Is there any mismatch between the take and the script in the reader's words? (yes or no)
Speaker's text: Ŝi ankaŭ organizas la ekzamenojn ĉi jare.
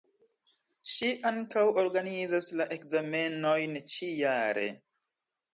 no